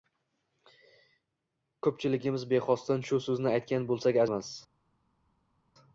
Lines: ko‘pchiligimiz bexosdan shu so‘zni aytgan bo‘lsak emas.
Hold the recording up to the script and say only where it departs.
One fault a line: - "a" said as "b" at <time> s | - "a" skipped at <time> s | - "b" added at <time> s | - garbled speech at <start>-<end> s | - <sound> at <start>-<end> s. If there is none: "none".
none